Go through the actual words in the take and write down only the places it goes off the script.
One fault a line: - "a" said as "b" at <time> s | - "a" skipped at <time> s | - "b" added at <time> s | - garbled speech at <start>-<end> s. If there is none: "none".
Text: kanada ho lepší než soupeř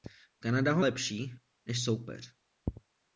none